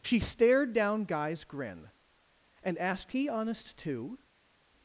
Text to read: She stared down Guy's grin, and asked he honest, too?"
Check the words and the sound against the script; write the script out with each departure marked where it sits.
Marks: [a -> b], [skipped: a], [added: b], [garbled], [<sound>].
She stared down Guy's grin, and asked he honest, too?"